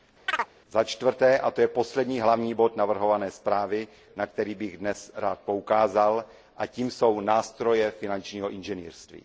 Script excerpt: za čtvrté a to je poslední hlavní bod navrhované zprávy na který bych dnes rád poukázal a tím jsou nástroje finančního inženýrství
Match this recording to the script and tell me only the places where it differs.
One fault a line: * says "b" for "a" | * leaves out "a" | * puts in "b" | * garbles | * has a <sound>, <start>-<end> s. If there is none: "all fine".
* has a chirp, 0.3-0.5 s